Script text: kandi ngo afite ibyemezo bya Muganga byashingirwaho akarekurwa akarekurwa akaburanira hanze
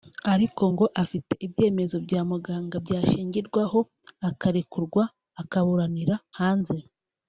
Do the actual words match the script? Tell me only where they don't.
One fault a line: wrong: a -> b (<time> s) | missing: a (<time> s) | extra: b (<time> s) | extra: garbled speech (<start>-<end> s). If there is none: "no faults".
wrong: kandi -> ariko (0.3 s)
missing: akarekurwa (5.0 s)